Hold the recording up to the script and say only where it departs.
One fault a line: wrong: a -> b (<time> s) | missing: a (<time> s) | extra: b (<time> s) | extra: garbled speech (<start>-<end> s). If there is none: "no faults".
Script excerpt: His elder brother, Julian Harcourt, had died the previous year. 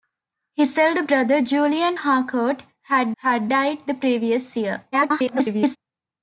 extra: had (3.2 s)
extra: garbled speech (4.9-5.8 s)